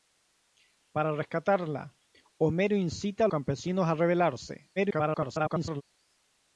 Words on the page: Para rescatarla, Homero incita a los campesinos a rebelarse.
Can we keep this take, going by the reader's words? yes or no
no